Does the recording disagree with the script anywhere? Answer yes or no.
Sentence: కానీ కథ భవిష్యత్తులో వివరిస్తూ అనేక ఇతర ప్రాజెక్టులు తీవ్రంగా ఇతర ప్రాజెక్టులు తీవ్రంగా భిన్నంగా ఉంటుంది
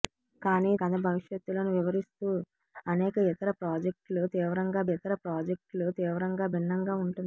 no